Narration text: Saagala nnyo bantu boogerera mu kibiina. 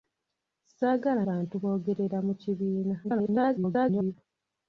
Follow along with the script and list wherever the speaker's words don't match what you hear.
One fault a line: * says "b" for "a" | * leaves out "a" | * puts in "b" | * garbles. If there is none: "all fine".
* leaves out "nnyo"
* garbles